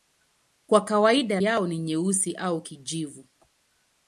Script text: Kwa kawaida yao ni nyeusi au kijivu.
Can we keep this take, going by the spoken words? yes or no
yes